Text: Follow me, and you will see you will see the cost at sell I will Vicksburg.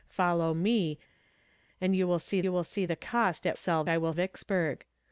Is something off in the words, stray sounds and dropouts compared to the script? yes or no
no